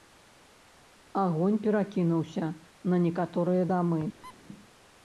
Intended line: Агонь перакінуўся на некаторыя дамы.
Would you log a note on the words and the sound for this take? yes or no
yes